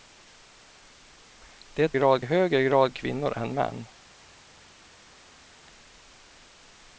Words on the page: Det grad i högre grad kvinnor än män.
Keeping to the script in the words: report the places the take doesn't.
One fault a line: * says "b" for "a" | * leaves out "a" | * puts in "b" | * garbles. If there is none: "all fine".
all fine